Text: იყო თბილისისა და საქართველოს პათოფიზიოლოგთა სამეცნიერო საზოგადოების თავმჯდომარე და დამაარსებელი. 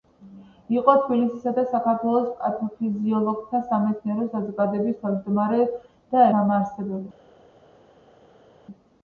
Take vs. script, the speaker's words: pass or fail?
pass